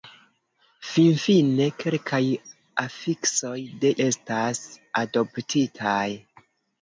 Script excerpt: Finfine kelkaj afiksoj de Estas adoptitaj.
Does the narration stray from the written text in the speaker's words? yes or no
no